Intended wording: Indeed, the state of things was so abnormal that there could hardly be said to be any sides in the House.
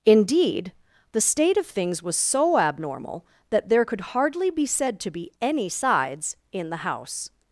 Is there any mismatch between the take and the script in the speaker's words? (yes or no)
no